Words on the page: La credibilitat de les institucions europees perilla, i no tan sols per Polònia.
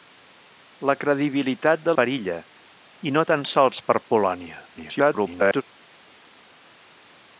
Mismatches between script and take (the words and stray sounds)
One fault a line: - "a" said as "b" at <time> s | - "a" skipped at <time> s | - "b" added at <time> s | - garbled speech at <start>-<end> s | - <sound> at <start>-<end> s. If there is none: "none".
- "les institucions europees" skipped at 1.9 s
- garbled speech at 4.7-5.6 s